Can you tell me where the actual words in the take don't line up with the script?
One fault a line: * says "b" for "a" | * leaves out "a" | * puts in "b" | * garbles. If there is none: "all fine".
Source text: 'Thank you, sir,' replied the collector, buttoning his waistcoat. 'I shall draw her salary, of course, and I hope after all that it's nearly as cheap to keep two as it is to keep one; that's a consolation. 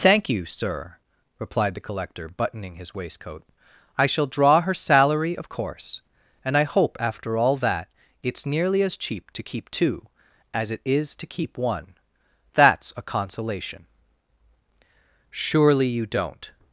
* puts in "Surely you don't"